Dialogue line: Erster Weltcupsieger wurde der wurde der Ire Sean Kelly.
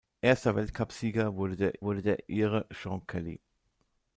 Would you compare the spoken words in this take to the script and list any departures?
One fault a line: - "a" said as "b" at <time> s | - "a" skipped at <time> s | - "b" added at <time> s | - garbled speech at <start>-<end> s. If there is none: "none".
none